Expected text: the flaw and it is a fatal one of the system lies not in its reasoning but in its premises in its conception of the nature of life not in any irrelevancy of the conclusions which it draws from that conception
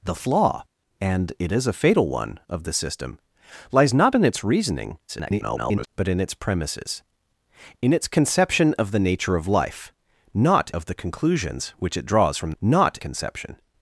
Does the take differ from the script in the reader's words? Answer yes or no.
yes